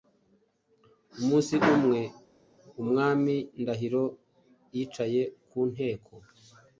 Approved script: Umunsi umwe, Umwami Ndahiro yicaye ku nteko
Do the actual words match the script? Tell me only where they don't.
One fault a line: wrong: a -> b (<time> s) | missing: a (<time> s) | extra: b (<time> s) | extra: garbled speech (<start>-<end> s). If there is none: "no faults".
no faults